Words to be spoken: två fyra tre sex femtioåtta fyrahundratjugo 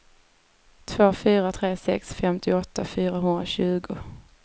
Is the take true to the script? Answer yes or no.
yes